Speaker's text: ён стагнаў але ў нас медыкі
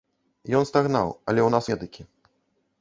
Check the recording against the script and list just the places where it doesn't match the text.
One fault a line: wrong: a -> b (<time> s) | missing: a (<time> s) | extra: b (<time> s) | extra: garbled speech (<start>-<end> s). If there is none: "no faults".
no faults